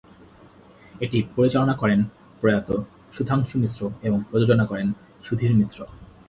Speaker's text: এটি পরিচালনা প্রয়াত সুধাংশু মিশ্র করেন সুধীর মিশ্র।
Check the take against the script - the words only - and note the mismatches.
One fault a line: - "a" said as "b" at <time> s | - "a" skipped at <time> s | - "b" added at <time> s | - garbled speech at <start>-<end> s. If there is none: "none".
- "করেন" added at 1.8 s
- "এবং প্রযোজনা" added at 4.0 s